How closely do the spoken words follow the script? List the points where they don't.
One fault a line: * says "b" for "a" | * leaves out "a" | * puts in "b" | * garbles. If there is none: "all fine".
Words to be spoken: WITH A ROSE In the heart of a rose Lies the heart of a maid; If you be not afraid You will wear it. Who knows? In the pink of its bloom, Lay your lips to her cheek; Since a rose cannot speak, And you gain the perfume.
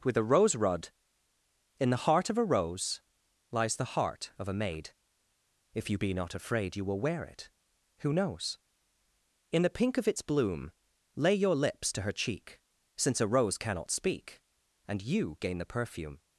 * puts in "rod"